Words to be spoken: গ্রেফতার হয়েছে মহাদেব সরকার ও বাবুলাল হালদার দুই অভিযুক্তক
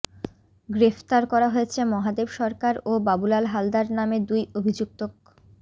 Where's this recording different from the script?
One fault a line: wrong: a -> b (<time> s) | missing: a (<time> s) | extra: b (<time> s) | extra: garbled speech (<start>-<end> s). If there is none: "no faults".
extra: করা (1.3 s)
extra: নামে (4.0 s)